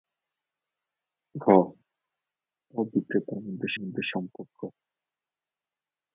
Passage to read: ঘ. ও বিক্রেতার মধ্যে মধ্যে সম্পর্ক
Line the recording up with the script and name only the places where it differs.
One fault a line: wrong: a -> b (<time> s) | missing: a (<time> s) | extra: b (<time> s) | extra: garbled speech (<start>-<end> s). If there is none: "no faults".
no faults